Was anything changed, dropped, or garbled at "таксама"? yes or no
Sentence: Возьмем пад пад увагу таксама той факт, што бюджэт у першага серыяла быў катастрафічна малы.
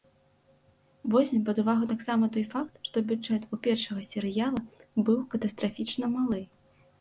no